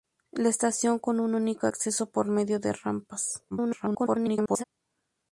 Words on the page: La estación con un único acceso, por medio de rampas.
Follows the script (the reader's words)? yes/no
no